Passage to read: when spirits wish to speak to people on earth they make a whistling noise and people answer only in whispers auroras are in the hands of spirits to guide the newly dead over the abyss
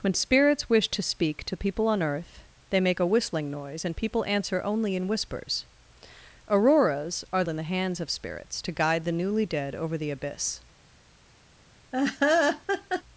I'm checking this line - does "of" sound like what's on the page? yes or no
yes